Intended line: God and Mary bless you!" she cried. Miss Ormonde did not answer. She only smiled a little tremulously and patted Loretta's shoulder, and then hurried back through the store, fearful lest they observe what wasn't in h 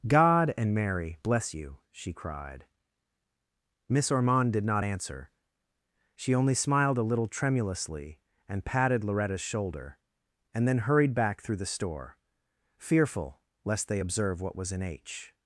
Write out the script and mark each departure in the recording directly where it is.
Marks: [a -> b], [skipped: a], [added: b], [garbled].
God and Mary bless you!" she cried. Miss Ormonde did not answer. She only smiled a little tremulously and patted Loretta's shoulder, and then hurried back through the store, fearful lest they observe what [wasn't -> was] in h